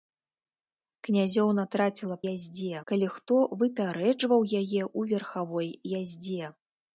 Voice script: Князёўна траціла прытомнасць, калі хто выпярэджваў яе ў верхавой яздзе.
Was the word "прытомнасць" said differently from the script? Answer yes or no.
yes